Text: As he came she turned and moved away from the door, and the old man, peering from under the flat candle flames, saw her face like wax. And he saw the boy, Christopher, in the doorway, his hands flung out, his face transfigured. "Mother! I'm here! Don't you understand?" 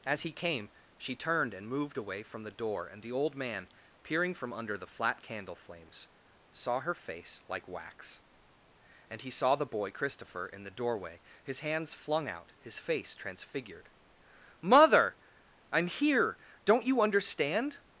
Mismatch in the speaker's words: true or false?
false